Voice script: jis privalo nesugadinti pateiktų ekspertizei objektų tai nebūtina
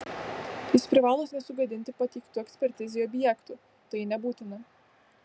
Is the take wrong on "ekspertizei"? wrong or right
right